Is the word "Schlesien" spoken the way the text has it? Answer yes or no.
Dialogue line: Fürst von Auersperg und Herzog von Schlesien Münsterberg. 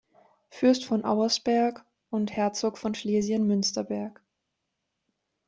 yes